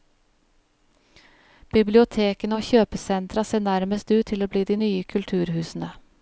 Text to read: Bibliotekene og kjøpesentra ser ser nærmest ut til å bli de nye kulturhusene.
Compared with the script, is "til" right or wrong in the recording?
right